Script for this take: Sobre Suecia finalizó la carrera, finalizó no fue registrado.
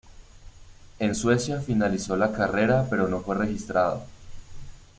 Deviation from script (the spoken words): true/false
true